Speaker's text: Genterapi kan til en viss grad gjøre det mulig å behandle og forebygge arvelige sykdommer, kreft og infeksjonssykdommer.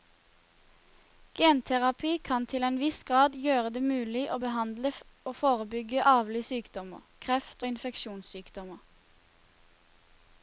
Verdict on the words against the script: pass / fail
pass